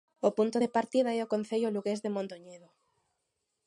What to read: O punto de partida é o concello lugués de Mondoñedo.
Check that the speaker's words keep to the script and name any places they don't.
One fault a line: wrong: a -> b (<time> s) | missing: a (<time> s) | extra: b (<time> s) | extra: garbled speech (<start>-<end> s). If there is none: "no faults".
no faults